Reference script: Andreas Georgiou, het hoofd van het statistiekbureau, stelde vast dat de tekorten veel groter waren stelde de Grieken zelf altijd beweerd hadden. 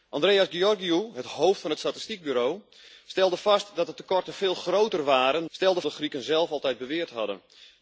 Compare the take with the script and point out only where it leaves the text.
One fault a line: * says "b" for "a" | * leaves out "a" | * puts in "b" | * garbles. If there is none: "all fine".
all fine